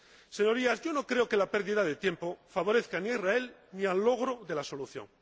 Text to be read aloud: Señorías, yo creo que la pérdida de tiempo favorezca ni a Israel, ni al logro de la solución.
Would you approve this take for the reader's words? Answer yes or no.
no